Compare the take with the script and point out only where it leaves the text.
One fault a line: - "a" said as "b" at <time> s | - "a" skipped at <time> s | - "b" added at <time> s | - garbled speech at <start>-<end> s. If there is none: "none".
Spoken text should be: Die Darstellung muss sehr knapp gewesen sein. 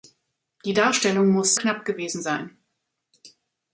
- "sehr" skipped at 1.5 s